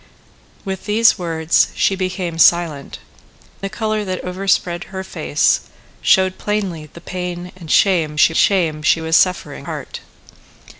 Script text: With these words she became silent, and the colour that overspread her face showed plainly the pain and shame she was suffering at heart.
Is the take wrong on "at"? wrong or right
wrong